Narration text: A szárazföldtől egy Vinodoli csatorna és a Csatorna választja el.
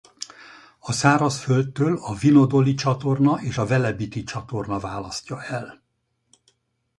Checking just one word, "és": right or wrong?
right